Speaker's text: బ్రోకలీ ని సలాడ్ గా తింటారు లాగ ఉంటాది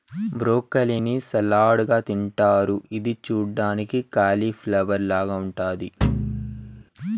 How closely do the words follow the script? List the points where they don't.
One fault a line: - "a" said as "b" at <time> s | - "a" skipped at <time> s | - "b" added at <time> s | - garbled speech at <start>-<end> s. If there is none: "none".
- "ఇది చూడ్డానికి కాలిఫ్లవర్" added at 3.0 s